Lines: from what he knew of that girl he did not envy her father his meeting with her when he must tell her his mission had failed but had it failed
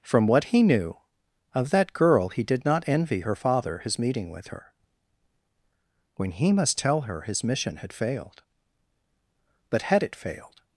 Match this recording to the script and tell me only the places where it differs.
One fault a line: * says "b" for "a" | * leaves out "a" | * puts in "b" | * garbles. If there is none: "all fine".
all fine